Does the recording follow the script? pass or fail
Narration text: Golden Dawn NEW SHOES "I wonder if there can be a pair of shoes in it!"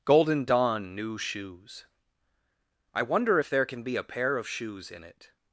pass